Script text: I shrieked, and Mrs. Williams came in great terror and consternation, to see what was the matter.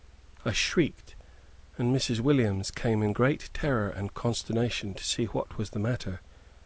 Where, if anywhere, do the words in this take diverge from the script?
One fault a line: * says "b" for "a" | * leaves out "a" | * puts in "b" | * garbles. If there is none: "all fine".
all fine